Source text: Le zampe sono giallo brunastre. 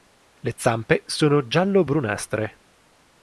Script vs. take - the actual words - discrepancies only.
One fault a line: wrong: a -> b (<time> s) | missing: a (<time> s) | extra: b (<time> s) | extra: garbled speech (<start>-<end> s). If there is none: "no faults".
no faults